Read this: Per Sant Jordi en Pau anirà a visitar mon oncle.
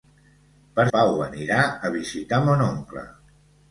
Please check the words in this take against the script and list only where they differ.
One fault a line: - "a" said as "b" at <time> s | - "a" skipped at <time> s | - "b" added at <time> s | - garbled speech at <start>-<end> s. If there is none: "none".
- "Sant Jordi en" skipped at 0.8 s